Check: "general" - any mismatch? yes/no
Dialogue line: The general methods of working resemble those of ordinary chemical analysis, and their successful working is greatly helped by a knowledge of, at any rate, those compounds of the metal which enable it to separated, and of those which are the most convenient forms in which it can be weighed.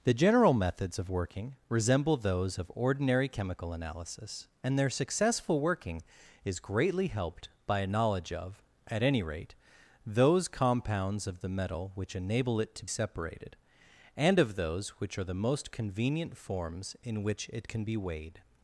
no